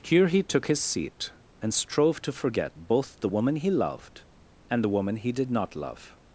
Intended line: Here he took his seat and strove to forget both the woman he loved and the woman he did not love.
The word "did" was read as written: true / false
true